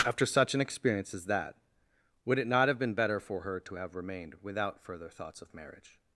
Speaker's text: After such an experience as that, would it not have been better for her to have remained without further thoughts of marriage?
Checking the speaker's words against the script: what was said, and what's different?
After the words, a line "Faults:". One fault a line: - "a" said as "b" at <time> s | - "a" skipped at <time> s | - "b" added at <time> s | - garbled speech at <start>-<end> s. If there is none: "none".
After such an experience as that, would it not have been better for her to have remained without further thoughts of marriage?
Faults:
none